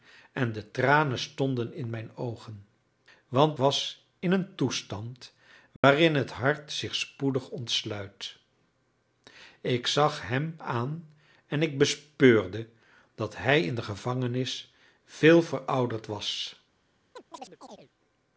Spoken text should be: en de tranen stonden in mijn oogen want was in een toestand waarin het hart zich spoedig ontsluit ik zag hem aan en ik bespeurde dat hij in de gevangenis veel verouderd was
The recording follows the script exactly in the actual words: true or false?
true